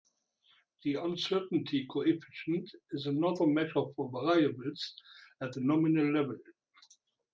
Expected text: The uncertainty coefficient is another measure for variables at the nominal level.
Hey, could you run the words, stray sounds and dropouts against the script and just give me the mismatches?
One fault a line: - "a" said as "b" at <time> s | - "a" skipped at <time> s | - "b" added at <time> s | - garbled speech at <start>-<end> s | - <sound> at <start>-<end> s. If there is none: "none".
none